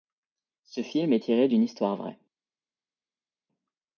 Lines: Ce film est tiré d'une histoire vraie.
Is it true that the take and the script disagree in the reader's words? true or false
false